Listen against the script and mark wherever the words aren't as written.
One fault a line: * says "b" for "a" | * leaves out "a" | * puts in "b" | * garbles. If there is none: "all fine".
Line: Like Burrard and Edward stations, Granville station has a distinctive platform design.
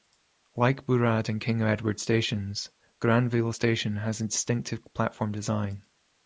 * puts in "King"